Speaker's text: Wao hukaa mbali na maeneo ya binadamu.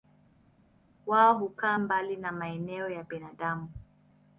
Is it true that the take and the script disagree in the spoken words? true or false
false